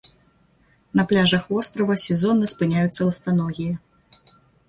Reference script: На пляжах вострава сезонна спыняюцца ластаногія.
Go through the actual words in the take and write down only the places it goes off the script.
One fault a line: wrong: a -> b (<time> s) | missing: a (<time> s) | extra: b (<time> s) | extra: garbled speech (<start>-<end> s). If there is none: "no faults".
no faults